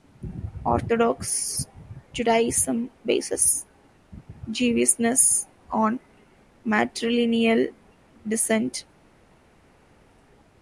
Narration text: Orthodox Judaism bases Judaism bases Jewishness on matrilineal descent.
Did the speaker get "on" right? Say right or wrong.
right